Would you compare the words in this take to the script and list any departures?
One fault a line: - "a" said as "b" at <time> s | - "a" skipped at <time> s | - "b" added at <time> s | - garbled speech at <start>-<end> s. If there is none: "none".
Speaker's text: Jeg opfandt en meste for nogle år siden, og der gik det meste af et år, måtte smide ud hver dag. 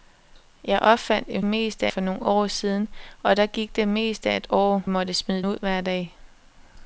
none